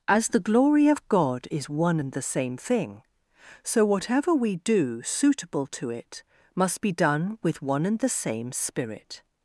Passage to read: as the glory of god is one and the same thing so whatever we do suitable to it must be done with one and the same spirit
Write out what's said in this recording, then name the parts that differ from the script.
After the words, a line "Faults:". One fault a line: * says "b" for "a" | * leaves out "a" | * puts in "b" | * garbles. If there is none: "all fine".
as the glory of god is one and the same thing so whatever we do suitable to it must be done with one and the same spirit
Faults:
all fine